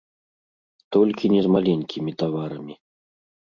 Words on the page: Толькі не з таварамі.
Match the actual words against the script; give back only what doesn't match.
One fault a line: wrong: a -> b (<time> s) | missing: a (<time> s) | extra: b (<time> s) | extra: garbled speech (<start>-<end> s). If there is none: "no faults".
extra: маленькімі (1.6 s)